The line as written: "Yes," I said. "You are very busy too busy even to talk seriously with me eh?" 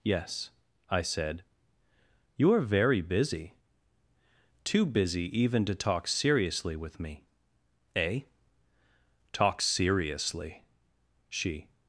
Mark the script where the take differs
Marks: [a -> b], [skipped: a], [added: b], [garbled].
"Yes," I said. "You are very busy too busy even to talk seriously with me eh?" [added: Talk seriously she]